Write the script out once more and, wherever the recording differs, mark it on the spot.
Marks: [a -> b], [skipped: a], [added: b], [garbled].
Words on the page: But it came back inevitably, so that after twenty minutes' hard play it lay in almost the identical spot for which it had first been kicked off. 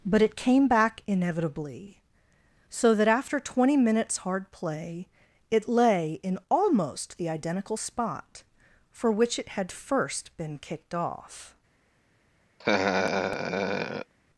But it came back inevitably, so that after twenty minutes' hard play it lay in almost the identical spot for which it had first been kicked off.